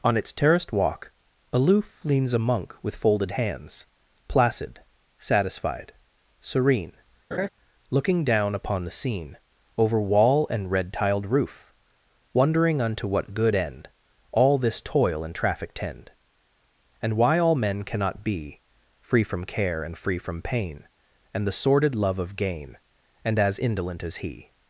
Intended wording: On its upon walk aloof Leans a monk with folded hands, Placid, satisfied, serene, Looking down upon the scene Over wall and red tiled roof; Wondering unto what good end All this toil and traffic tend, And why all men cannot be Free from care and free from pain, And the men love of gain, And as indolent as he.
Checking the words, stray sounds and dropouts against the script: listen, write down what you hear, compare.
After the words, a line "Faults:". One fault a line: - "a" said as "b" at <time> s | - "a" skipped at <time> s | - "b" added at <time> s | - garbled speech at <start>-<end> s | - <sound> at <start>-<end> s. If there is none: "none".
On its terraced walk aloof Leans a monk with folded hands, Placid, satisfied, serene, Looking down upon the scene Over wall and red tiled roof; Wondering unto what good end All this toil and traffic tend, And why all men cannot be Free from care and free from pain, And the sordid love of gain, And as indolent as he.
Faults:
- "upon" said as "terraced" at 0.3 s
- laugh at 7.3-7.5 s
- "men" said as "sordid" at 21.5 s